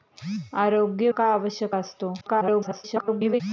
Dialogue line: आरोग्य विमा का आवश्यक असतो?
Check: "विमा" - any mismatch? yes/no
yes